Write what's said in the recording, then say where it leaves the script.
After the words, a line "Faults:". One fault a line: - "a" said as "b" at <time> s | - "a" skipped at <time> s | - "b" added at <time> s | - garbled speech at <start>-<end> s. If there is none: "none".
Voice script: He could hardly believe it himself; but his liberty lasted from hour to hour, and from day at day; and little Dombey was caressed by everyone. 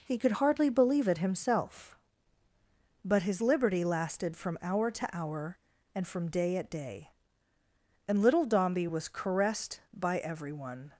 He could hardly believe it himself; but his liberty lasted from hour to hour, and from day at day; and little Dombey was caressed by everyone.
Faults:
none